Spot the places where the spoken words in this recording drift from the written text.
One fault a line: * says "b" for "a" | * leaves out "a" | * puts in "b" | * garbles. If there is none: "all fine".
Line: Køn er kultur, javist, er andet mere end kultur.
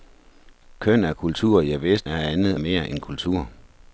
all fine